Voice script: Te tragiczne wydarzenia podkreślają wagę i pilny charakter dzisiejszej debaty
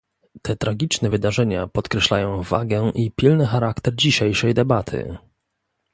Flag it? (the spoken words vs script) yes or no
no